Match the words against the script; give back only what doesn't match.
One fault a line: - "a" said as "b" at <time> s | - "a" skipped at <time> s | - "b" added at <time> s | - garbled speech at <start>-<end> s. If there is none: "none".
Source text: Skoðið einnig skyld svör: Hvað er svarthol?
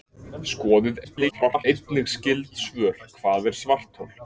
- garbled speech at 1.0-1.6 s